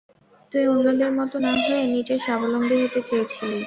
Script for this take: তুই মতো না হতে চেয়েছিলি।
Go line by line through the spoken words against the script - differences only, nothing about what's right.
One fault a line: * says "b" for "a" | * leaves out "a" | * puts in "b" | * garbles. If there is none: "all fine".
* puts in "অন্যদের"
* puts in "হয়ে নিজে স্বাবলম্বী"